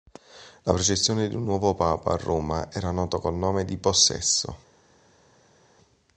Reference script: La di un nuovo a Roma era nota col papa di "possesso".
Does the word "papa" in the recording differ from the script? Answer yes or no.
yes